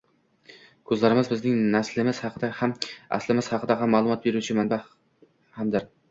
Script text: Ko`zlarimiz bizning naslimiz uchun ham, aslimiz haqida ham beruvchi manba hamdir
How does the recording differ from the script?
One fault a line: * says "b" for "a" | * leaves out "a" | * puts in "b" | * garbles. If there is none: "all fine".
* says "haqida" for "uchun"
* puts in "ma`lumot"